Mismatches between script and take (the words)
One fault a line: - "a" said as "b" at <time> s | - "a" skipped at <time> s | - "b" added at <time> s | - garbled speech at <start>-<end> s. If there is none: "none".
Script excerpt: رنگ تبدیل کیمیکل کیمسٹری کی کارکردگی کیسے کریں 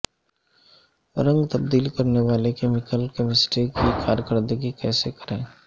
- "کرنے والے" added at 1.9 s